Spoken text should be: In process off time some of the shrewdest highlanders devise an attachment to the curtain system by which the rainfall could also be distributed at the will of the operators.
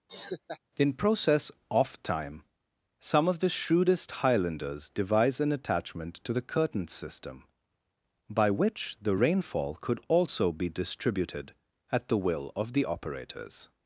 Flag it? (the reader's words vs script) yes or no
no